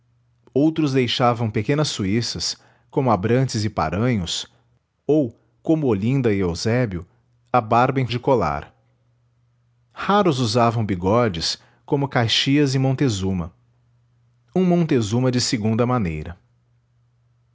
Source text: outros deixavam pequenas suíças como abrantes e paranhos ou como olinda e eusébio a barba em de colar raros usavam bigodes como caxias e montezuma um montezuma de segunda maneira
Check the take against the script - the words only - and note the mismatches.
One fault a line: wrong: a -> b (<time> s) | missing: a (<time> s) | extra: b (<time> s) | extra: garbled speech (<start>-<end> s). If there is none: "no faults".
no faults